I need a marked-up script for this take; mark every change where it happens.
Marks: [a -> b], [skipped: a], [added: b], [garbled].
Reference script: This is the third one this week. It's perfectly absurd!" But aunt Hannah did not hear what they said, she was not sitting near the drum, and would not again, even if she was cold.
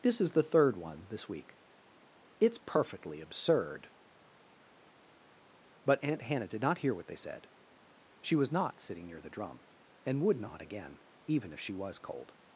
This is the third one this week. It's perfectly absurd!" But aunt Hannah did not hear what they said, she was not sitting near the drum, and would not again, even if she was cold.